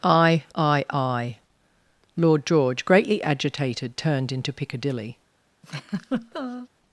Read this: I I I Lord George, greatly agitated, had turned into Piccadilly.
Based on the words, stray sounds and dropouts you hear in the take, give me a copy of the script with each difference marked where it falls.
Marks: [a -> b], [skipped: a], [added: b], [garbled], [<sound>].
I I I Lord George, greatly agitated, [skipped: had] turned into Piccadilly. [laugh]